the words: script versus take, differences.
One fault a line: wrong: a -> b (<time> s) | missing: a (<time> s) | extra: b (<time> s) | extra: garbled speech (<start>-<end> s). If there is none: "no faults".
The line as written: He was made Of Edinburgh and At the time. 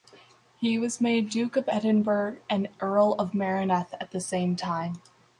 extra: Duke (1.3 s)
extra: Earl of Merioneth (2.8 s)
extra: same (4.2 s)